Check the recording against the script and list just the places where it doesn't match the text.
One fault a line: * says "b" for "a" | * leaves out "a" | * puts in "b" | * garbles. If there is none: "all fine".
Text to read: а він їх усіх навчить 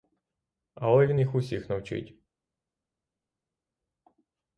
* says "але" for "а"